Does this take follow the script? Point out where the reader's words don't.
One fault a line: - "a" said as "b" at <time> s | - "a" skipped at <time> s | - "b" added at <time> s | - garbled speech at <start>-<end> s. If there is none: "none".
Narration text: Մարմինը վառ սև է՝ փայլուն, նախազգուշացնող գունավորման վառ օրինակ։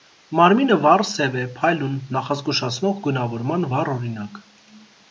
none